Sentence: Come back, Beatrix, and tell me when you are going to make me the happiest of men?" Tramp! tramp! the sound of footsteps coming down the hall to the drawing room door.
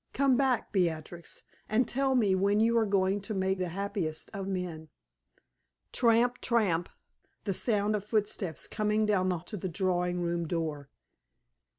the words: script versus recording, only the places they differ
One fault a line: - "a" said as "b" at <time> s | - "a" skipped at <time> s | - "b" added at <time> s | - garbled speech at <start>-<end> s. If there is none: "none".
- "me" skipped at 3.6 s
- "hall" skipped at 9.4 s